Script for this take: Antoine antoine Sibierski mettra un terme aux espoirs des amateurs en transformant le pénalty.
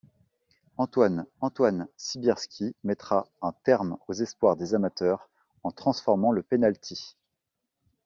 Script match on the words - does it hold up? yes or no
yes